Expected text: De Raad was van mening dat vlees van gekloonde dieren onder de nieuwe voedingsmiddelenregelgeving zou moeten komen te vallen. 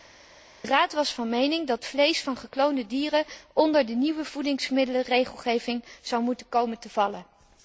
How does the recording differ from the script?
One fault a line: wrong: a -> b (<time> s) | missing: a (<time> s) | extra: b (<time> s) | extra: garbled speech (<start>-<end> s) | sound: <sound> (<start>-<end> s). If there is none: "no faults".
no faults